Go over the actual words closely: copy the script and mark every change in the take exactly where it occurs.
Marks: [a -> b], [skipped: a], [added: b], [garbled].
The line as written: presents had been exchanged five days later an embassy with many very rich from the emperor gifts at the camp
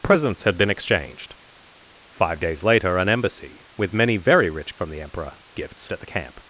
presents had been exchanged five days later an embassy with many very rich from the emperor gifts at the camp